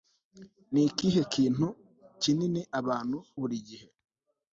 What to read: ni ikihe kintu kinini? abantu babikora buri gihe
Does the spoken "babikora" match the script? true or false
false